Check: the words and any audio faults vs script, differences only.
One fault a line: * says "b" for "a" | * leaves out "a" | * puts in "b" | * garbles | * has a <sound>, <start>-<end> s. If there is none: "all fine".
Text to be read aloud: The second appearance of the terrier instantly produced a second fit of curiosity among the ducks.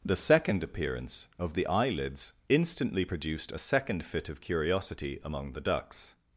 * says "eyelids" for "terrier"